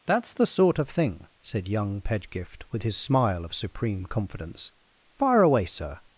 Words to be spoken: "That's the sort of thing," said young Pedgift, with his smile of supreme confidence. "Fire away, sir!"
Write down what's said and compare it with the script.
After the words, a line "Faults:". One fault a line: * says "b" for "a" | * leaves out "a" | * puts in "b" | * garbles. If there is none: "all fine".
"That's the sort of thing," said young Pedgift, with his smile of supreme confidence. "Fire away, sir!"
Faults:
all fine